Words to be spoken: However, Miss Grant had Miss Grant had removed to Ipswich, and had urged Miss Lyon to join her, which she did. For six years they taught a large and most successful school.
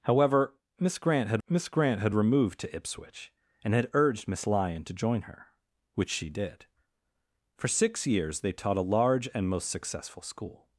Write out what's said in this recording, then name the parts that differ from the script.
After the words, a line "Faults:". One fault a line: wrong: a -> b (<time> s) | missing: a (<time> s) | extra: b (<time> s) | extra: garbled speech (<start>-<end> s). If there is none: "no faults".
However, Miss Grant had Miss Grant had removed to Ipswich, and had urged Miss Lyon to join her, which she did. For six years they taught a large and most successful school.
Faults:
no faults